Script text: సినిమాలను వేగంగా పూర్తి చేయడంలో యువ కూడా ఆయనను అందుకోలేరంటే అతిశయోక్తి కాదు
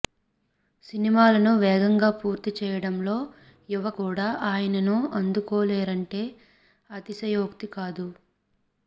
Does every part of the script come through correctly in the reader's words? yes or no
yes